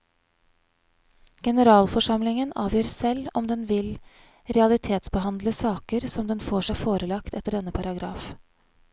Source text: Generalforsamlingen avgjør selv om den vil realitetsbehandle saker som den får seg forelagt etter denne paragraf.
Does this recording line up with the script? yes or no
yes